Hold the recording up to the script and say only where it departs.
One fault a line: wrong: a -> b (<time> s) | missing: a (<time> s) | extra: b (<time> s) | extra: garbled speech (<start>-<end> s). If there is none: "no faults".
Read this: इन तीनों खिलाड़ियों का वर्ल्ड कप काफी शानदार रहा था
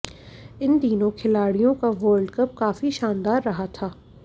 no faults